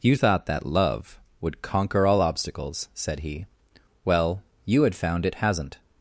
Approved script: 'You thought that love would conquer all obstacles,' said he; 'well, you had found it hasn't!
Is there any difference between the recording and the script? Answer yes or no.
no